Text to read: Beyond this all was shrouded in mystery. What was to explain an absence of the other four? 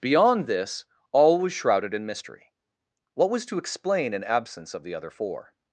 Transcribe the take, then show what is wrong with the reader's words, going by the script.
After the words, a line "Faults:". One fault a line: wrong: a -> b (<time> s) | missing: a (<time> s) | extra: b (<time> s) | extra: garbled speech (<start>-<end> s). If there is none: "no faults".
Beyond this all was shrouded in mystery. What was to explain an absence of the other four?
Faults:
no faults